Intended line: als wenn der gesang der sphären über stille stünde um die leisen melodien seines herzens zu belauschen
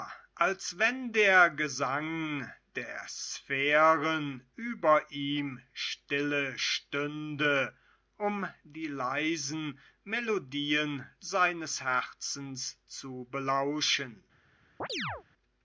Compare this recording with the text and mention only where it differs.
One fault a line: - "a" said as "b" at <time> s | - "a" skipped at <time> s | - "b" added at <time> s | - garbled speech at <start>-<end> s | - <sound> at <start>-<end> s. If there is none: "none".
- "ihm" added at 5.1 s
- chirp at 14.8-15.2 s